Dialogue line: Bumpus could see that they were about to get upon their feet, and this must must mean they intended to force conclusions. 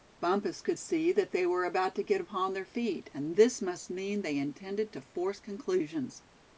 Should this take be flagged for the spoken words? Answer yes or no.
yes